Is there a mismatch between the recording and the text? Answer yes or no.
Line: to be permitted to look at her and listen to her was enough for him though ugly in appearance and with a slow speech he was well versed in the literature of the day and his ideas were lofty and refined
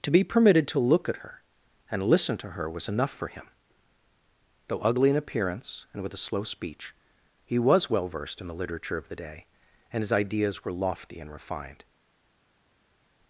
no